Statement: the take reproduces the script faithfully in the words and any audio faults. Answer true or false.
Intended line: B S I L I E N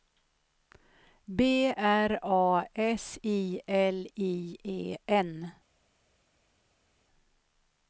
false